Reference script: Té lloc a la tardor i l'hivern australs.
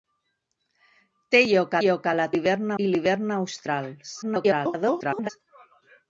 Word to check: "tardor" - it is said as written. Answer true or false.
false